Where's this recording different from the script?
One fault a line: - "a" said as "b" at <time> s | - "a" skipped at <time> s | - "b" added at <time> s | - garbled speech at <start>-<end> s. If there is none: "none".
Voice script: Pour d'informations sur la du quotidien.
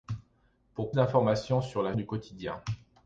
none